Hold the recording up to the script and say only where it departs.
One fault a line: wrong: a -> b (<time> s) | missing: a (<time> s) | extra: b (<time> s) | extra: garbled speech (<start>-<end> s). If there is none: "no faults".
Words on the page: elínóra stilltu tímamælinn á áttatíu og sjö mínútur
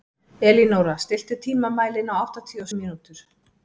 missing: sjö (2.7 s)